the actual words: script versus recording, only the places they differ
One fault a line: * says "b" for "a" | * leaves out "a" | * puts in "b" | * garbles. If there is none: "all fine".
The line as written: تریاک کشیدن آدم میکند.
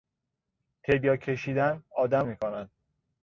all fine